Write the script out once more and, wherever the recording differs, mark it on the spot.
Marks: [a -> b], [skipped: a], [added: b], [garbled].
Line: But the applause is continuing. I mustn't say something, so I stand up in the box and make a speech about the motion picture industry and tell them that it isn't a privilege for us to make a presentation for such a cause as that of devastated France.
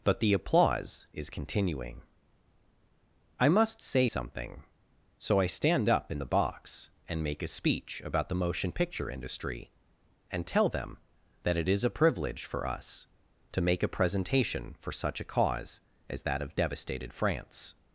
But the applause is continuing. I [mustn't -> must] say something, so I stand up in the box and make a speech about the motion picture industry and tell them that it [isn't -> is] a privilege for us to make a presentation for such a cause as that of devastated France.